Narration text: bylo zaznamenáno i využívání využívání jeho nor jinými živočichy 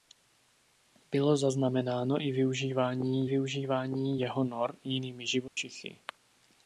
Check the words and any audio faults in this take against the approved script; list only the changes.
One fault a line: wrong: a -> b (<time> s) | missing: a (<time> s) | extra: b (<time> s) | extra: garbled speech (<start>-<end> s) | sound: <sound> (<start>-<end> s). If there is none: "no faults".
sound: dropout (5.5-5.6 s)